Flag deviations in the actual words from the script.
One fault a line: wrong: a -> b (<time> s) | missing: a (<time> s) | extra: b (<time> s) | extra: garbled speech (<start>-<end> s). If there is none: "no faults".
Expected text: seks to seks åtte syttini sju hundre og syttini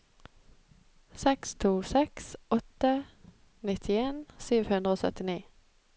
wrong: syttini -> nittien (3.7 s)